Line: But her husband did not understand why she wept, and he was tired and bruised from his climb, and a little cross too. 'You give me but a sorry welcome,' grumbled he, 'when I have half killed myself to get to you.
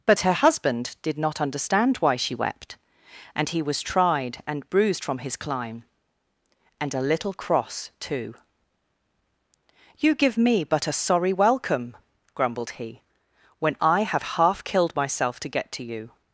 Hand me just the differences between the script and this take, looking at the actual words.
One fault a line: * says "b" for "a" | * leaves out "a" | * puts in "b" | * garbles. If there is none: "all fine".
* says "tried" for "tired"